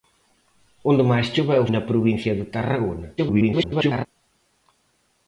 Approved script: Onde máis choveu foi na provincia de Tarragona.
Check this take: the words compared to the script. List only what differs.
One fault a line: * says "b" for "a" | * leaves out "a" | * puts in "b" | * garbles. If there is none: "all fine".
* leaves out "foi"
* garbles